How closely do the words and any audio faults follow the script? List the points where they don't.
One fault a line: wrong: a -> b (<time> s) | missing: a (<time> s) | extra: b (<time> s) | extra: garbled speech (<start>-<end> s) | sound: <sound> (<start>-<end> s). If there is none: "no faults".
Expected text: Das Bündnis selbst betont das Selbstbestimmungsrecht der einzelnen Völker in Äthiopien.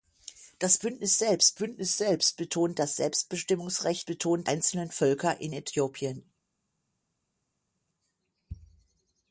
extra: Bündnis selbst (1.6 s)
wrong: der -> betont (4.1 s)